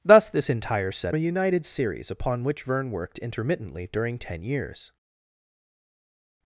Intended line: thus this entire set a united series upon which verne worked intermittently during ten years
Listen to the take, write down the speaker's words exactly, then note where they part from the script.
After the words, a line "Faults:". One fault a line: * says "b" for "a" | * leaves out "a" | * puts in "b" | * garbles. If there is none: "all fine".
thus this entire set a united series upon which verne worked intermittently during ten years
Faults:
all fine